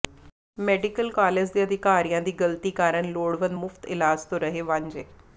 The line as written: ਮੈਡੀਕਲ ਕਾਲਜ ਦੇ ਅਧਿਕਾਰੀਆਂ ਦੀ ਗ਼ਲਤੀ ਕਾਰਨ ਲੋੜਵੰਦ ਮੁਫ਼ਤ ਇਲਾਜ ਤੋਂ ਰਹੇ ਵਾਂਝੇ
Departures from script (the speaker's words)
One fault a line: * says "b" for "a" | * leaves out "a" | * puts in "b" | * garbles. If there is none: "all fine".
all fine